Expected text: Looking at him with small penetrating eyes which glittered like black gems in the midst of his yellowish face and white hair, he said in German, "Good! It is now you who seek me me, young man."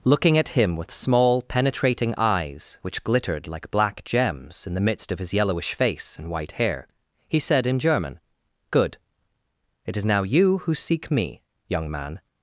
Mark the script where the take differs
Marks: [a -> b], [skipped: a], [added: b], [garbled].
Looking at him with small penetrating eyes which glittered like black gems in the midst of his yellowish face and white hair, he said in German, "Good! It is now you who seek me [skipped: me,] young man."